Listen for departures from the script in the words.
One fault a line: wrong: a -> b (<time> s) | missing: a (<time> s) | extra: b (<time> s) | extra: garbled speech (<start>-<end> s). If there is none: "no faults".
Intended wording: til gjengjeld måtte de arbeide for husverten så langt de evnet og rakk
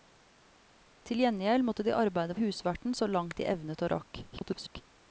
missing: for (2.4 s)
extra: garbled speech (4.3-4.8 s)